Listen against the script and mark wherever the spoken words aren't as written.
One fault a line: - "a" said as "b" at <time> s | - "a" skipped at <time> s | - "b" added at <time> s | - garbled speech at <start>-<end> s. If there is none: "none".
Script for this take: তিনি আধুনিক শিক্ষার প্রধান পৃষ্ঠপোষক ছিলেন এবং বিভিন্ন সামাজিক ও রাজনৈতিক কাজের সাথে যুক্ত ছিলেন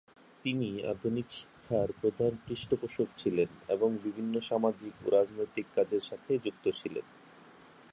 none